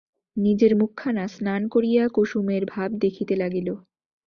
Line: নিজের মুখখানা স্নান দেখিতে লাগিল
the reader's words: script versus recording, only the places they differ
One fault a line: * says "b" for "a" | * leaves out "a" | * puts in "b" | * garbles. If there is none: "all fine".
* puts in "করিয়া কুসুমের ভাব"